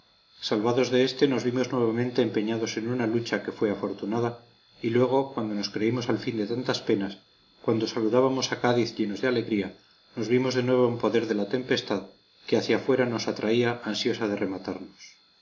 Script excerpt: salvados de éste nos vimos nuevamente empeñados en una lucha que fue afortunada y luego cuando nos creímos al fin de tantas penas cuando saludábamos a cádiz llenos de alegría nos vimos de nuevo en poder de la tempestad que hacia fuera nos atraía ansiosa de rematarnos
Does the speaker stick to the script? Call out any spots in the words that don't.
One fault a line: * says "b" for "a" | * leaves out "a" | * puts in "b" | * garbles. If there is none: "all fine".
all fine